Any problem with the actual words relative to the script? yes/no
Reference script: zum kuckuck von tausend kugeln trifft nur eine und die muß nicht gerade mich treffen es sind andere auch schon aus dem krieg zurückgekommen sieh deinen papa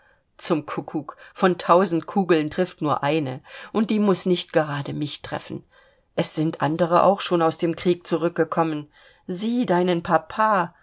no